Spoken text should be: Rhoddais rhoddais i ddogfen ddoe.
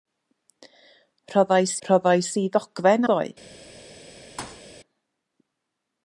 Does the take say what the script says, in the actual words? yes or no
yes